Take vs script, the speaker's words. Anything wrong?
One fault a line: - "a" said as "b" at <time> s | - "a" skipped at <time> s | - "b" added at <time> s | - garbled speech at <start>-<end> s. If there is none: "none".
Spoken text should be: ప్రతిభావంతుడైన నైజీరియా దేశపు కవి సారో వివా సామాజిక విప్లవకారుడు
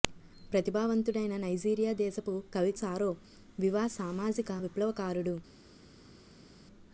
none